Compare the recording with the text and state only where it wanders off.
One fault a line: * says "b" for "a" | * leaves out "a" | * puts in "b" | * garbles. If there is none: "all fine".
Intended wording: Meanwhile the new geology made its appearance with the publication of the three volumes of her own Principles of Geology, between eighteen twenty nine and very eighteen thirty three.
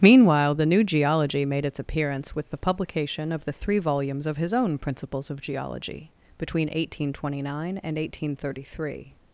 * says "his" for "her"
* leaves out "very"